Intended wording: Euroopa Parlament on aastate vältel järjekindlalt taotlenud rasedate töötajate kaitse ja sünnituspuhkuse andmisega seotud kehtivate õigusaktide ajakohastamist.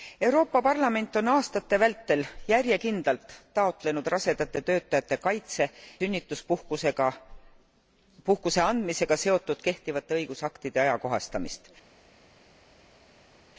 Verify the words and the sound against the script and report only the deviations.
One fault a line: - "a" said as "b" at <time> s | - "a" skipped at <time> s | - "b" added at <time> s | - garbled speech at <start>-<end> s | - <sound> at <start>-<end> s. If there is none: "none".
- "ja" skipped at 5.7 s